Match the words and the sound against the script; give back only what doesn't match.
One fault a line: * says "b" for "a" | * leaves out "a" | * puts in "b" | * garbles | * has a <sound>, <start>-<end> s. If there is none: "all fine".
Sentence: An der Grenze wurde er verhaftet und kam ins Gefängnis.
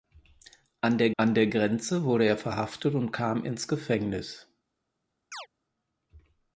* puts in "an der"
* has a chirp, 5.3-5.5 s